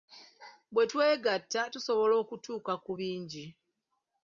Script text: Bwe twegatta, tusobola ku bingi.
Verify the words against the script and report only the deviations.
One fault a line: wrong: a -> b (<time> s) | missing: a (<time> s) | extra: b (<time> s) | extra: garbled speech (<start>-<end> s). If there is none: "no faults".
extra: okutuuka (2.2 s)